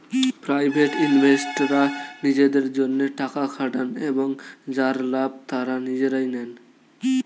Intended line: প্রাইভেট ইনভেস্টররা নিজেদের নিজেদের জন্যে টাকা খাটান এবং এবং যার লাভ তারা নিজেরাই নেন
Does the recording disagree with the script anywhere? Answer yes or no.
yes